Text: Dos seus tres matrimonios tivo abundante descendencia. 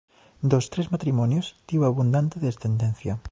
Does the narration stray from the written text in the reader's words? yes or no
yes